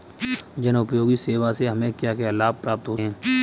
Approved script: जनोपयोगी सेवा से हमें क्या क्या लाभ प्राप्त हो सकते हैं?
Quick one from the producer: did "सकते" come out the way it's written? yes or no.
no